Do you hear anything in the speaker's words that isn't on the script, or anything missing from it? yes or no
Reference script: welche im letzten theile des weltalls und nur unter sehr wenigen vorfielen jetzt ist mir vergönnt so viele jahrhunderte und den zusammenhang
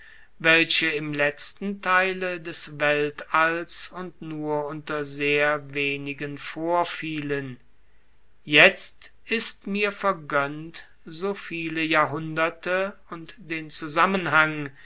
no